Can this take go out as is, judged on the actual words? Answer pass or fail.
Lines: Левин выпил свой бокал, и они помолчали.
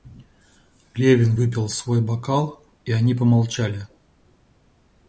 pass